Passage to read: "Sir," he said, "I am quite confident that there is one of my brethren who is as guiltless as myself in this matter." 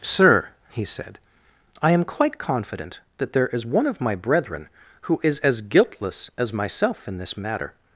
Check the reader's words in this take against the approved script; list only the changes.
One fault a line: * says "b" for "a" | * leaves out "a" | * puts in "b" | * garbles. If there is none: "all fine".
all fine